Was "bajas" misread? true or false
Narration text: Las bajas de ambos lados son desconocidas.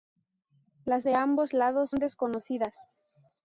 true